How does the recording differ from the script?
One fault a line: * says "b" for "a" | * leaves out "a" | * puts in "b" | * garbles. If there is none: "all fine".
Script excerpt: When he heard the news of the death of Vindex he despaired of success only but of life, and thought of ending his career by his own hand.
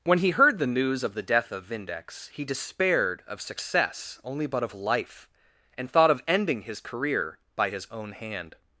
all fine